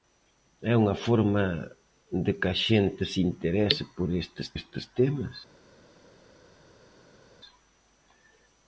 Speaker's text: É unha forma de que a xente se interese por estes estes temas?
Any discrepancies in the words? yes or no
no